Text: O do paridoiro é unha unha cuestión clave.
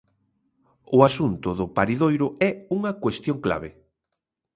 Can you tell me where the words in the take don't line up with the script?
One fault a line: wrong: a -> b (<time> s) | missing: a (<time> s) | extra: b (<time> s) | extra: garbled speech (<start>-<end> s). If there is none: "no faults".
extra: asunto (1.1 s)
missing: unha (2.9 s)